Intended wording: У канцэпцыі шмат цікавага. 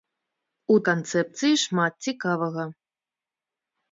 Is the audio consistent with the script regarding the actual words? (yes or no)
yes